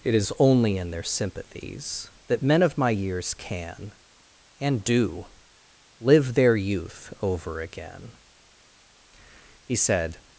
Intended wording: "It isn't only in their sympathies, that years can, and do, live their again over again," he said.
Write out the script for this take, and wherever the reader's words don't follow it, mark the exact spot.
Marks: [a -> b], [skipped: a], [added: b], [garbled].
"It [isn't -> is] only in their sympathies, that [added: men of my] years can, and do, live their [again -> youth] over again," he said.